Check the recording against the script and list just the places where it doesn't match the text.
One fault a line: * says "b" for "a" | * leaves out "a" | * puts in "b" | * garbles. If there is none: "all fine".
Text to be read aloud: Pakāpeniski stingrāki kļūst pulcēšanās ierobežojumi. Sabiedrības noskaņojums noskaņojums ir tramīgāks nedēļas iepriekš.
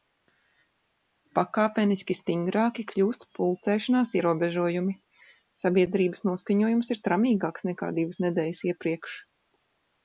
* leaves out "noskaņojums"
* puts in "nekā divas"